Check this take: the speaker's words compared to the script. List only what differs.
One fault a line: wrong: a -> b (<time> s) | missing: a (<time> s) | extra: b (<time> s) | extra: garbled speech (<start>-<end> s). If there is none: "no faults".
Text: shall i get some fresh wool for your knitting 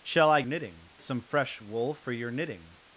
wrong: get -> knitting (0.4 s)